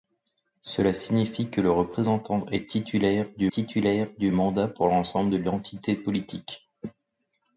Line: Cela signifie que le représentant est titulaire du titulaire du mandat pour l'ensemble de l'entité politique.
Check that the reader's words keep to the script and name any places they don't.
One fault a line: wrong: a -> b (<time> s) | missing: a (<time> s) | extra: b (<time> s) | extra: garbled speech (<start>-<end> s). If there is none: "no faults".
no faults